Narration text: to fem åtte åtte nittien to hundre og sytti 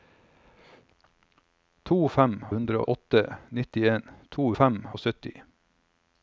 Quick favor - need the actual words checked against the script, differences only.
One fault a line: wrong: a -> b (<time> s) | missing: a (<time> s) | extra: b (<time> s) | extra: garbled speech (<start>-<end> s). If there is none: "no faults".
wrong: åtte -> hundre (2.5 s)
wrong: hundre -> fem (4.5 s)